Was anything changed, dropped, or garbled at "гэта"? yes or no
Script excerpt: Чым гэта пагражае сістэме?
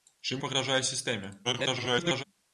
yes